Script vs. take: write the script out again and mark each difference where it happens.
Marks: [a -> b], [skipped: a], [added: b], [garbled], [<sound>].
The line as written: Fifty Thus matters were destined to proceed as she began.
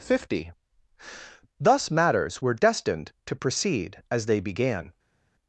Fifty Thus matters were destined to proceed as [she -> they] began.